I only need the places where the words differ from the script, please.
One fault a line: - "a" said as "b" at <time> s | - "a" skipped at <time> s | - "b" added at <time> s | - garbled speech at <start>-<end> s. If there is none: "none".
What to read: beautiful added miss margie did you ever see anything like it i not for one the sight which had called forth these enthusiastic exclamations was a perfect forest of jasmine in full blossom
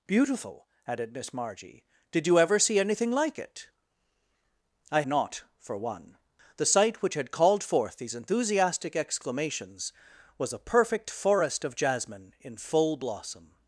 none